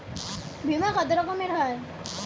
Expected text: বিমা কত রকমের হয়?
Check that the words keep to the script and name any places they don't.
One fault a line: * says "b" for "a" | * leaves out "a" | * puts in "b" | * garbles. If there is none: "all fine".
all fine